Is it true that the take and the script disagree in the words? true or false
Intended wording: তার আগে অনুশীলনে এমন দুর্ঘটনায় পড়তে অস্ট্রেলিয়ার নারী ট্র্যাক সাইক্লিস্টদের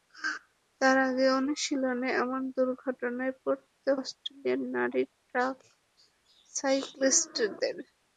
false